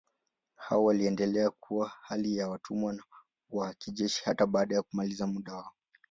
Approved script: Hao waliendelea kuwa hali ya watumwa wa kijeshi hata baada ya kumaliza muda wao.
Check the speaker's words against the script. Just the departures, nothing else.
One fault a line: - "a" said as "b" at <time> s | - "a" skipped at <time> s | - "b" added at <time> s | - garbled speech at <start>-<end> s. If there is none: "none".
none